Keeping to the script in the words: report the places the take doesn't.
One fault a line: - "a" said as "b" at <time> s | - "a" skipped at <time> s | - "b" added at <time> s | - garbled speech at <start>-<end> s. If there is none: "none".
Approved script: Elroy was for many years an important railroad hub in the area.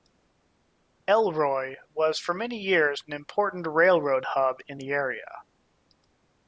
none